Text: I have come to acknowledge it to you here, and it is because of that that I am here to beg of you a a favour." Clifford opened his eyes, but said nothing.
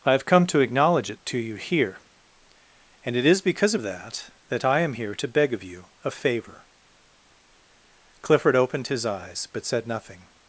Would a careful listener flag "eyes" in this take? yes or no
no